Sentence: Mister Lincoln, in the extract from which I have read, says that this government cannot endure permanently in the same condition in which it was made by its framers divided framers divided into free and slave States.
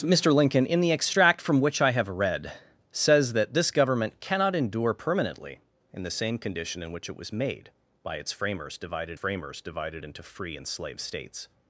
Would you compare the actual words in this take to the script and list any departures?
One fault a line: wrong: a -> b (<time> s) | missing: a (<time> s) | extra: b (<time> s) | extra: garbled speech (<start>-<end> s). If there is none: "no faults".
no faults